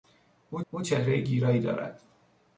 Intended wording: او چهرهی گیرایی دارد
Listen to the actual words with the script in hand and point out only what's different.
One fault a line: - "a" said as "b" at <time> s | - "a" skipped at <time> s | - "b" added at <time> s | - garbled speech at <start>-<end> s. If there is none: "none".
- "او" added at 0.7 s